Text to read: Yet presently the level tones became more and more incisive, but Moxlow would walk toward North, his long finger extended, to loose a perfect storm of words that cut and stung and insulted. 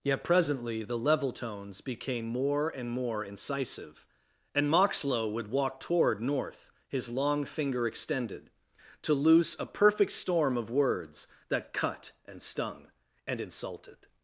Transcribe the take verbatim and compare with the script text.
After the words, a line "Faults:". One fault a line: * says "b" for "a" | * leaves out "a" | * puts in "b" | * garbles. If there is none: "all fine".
Yet presently the level tones became more and more incisive, and Moxlow would walk toward North, his long finger extended, to loose a perfect storm of words that cut and stung and insulted.
Faults:
* says "and" for "but"